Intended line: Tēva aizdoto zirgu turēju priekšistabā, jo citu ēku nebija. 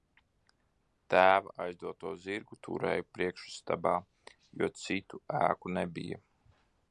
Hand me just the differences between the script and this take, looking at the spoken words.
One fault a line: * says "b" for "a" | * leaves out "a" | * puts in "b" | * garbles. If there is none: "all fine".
all fine